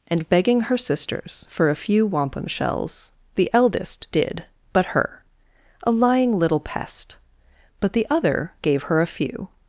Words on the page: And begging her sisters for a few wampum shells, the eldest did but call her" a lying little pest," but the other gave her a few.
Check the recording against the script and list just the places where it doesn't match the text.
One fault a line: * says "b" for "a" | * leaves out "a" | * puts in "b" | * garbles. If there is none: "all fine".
* leaves out "call"